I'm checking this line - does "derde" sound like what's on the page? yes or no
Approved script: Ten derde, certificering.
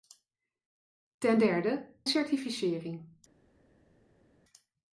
yes